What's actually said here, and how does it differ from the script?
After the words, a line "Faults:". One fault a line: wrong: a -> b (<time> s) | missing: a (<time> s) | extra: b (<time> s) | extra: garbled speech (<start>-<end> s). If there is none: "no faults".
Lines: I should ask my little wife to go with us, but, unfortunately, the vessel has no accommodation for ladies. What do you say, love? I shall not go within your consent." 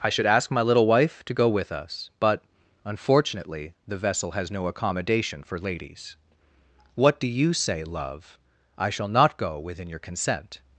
I should ask my little wife to go with us, but, unfortunately, the vessel has no accommodation for ladies. What do you say, love? I shall not go within your consent."
Faults:
no faults